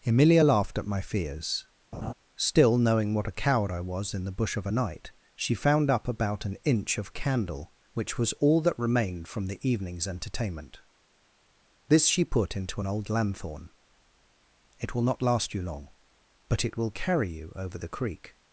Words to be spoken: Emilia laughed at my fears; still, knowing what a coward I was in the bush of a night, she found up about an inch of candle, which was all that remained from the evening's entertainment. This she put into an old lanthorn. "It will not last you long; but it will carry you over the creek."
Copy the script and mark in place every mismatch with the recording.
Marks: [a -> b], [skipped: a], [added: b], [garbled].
Emilia laughed at my fears; still, knowing what a coward I was in the bush of a night, she found up about an inch of candle, which was all that remained from the evening's entertainment. This she put into an old lanthorn. "It will not last you long; but it will carry you over the creek."